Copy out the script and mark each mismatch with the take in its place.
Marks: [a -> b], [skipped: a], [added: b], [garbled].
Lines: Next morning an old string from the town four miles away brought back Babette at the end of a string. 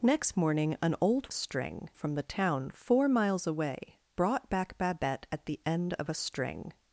Next morning an old string from the town four miles away brought back Babette at the end of a string.